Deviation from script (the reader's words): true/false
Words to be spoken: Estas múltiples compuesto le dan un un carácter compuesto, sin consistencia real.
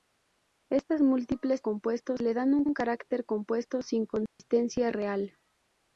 false